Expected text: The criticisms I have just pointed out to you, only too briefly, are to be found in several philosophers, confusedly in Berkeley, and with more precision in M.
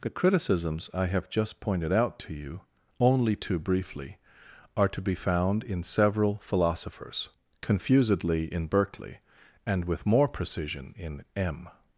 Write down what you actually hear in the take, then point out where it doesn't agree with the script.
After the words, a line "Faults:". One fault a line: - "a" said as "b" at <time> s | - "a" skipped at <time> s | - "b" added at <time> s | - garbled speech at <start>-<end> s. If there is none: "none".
The criticisms I have just pointed out to you, only too briefly, are to be found in several philosophers, confusedly in Berkeley, and with more precision in M.
Faults:
none